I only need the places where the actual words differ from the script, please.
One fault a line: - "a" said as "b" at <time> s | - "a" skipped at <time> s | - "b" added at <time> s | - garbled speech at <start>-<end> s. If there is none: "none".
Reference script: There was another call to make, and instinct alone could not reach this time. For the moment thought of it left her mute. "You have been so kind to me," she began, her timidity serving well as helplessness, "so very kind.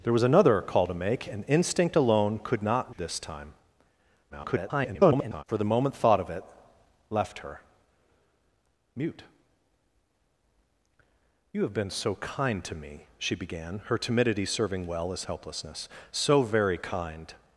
- "reach" skipped at 3.0 s
- garbled speech at 4.3-5.4 s